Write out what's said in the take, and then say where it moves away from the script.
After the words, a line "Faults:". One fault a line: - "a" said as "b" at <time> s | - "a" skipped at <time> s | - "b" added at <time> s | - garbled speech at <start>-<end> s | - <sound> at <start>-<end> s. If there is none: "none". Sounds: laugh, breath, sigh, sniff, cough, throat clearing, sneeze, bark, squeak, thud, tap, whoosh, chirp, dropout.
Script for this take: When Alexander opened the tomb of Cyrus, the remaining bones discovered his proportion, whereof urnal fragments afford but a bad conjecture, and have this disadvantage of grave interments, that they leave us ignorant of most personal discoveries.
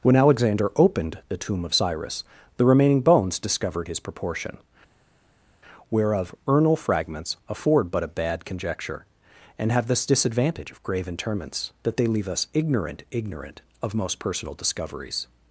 When Alexander opened the tomb of Cyrus, the remaining bones discovered his proportion, whereof urnal fragments afford but a bad conjecture, and have this disadvantage of grave interments, that they leave us ignorant ignorant of most personal discoveries.
Faults:
- "ignorant" added at 13.1 s